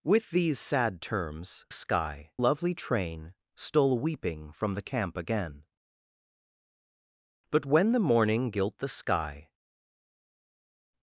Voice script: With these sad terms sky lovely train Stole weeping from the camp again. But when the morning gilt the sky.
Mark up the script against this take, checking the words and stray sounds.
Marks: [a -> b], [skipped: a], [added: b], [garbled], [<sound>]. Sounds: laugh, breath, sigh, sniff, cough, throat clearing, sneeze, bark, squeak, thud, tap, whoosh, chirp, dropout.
With these sad terms sky lovely train Stole weeping from the camp again. But when the morning gilt the sky.